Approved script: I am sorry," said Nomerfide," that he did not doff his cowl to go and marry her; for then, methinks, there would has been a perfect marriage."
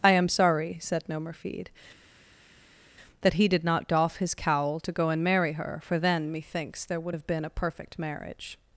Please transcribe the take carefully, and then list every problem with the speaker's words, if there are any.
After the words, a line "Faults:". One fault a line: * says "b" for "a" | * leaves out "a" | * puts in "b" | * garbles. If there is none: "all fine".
I am sorry," said Nomerfide," that he did not doff his cowl to go and marry her; for then, methinks, there would have been a perfect marriage."
Faults:
* says "have" for "has"